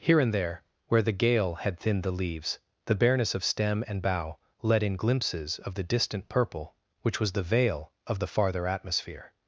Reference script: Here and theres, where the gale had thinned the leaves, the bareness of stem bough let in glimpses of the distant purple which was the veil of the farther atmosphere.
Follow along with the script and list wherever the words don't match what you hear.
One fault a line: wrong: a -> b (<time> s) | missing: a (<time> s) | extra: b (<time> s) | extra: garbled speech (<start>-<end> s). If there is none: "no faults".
wrong: theres -> there (0.3 s)
extra: and (3.9 s)